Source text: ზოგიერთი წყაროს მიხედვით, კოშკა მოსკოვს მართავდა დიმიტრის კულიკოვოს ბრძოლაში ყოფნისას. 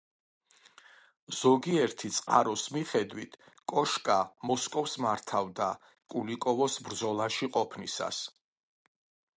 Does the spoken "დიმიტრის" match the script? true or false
false